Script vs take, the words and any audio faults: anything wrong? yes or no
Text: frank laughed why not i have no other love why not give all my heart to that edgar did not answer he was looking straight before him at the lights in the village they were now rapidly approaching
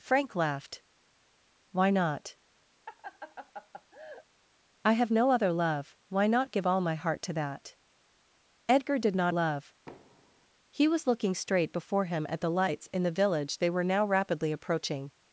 yes